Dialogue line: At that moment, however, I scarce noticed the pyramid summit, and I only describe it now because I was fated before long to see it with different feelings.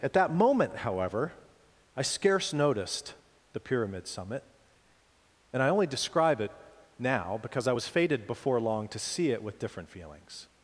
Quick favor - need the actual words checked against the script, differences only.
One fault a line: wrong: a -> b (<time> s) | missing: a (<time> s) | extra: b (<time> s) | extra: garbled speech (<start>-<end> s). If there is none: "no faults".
no faults